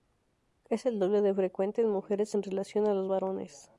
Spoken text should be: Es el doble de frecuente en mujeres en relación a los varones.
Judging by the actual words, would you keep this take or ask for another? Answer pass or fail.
pass